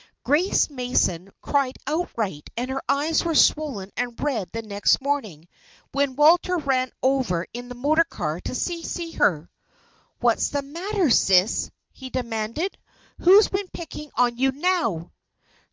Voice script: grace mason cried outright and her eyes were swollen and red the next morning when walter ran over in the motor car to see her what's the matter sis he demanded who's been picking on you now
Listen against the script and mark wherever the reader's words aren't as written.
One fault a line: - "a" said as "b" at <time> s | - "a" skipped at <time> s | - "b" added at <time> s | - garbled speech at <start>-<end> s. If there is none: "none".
- "see" added at 8.8 s